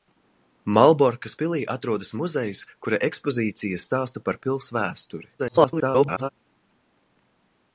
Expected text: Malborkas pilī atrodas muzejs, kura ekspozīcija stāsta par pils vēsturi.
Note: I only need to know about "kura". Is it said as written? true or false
true